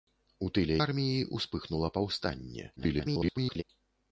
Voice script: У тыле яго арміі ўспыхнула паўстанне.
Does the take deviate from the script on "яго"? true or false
true